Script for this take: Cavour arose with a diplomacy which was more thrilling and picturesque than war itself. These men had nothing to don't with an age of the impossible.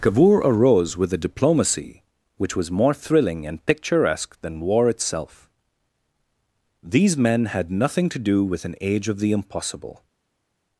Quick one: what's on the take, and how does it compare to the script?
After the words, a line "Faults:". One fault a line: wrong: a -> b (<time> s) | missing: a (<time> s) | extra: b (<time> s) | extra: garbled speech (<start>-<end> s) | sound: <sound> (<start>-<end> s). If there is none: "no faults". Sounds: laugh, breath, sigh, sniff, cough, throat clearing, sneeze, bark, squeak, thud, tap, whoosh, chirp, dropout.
Cavour arose with a diplomacy which was more thrilling and picturesque than war itself. These men had nothing to do with an age of the impossible.
Faults:
wrong: don't -> do (8.2 s)